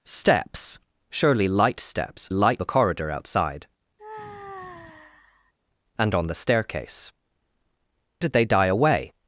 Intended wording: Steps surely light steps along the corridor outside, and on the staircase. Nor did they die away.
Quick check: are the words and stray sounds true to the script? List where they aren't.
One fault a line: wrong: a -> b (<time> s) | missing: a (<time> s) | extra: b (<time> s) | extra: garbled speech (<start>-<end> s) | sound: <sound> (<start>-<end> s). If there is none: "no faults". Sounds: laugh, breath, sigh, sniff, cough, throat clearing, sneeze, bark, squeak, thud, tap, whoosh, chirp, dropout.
wrong: along -> light (2.3 s)
sound: sigh (4.0-5.5 s)
missing: Nor (7.1 s)